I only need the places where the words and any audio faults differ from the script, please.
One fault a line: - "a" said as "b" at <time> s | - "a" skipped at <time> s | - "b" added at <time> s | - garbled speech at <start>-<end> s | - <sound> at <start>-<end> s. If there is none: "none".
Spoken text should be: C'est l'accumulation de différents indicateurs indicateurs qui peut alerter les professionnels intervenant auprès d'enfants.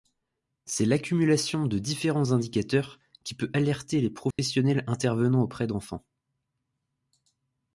- "indicateurs" skipped at 3.0 s
- dropout at 4.3-4.4 s